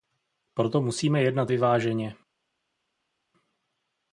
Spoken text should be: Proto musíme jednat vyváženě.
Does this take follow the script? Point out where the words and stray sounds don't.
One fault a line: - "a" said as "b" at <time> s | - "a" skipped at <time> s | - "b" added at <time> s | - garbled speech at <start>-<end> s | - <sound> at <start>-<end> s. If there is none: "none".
none